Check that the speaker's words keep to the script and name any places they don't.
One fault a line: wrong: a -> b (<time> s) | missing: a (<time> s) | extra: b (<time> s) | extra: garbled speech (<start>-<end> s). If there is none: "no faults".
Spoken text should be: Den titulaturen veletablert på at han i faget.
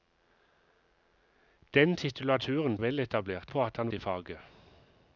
no faults